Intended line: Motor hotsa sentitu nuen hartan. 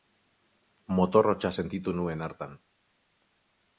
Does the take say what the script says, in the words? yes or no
yes